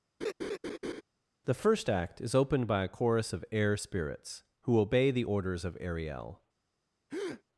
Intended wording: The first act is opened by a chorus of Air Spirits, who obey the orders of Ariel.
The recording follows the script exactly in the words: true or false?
true